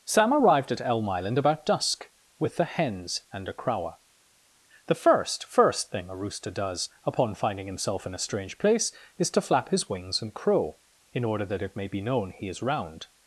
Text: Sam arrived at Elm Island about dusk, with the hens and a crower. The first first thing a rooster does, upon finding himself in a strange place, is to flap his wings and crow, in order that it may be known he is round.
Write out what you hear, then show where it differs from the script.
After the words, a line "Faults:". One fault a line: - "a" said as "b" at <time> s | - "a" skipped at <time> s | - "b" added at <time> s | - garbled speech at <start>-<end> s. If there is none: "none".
Sam arrived at Elm Island about dusk, with the hens and a crower. The first first thing a rooster does, upon finding himself in a strange place, is to flap his wings and crow, in order that it may be known he is round.
Faults:
none